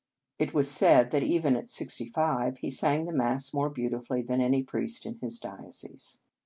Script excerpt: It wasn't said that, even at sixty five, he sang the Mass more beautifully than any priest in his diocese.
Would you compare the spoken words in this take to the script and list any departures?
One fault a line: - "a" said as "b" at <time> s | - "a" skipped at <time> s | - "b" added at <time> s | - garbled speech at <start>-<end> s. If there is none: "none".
- "wasn't" said as "was" at 0.5 s